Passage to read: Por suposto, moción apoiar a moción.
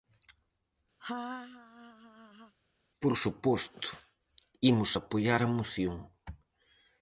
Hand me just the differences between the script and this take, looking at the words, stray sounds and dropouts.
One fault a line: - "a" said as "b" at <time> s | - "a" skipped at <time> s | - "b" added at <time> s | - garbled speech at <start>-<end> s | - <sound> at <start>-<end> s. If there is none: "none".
- laugh at 1.0-2.5 s
- "moción" said as "imos" at 4.7 s